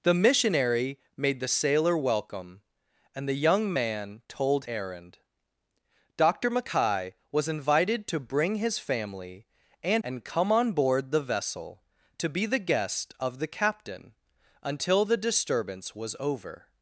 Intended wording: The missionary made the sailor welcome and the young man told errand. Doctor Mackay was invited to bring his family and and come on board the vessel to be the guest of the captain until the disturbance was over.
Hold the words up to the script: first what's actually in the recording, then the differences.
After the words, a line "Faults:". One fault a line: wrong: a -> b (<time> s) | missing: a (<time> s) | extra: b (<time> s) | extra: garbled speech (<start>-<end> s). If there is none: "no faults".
The missionary made the sailor welcome and the young man told errand. Doctor Mackay was invited to bring his family and and come on board the vessel to be the guest of the captain until the disturbance was over.
Faults:
no faults